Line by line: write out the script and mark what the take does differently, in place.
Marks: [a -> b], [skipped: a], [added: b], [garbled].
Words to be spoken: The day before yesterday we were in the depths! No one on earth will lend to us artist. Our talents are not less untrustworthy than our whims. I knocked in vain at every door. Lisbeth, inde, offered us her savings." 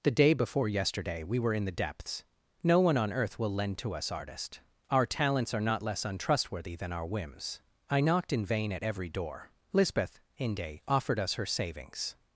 The day before yesterday we were in the depths! No one on earth will lend to us artist. Our talents are not less untrustworthy than our whims. I knocked in vain at every door. Lisbeth, inde, offered us her savings."